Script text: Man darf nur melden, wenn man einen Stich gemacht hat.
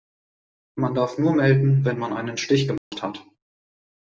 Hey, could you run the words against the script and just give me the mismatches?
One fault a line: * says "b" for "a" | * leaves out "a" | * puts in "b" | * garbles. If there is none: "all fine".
all fine